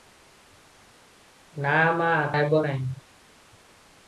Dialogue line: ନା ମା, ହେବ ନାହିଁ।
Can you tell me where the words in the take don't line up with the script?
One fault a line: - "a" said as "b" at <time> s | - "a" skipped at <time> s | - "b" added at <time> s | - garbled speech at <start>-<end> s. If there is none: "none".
none